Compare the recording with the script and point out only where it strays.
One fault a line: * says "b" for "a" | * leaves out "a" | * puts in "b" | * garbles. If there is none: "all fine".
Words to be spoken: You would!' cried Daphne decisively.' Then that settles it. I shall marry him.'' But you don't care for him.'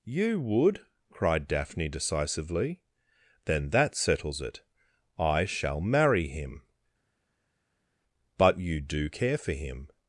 * says "do" for "don't"